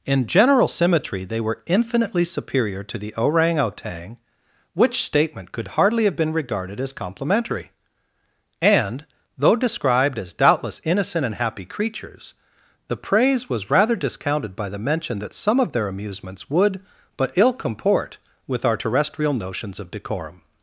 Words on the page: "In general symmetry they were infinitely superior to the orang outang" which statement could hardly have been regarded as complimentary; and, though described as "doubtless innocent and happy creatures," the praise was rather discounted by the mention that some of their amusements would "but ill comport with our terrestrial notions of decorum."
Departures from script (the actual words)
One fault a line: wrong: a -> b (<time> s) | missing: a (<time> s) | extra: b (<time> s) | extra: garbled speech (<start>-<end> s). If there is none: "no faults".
no faults